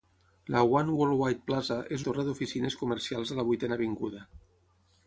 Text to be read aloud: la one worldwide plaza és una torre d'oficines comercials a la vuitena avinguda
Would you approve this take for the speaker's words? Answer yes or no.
no